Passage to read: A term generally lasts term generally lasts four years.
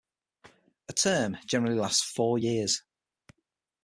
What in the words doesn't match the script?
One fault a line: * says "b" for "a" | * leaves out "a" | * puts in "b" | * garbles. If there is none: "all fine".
* leaves out "term generally lasts"